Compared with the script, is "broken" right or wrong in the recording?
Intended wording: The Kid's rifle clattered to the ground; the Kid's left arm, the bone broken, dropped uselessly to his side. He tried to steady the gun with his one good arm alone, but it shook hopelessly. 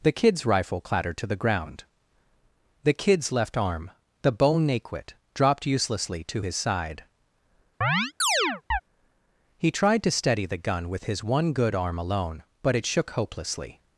wrong